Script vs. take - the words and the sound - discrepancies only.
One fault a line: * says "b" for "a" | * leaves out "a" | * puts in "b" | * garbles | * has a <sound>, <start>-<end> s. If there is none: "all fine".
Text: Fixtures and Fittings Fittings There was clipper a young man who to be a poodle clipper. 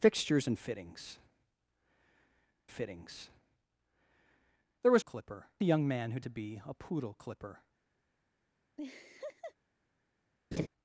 * has a laugh, 8.8-9.5 s
* has a laugh, 10.5-10.7 s